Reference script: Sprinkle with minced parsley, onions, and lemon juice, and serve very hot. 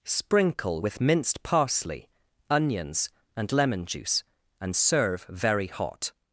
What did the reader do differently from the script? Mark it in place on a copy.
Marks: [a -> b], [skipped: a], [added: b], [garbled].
Sprinkle with minced parsley, onions, and lemon juice, and serve very hot.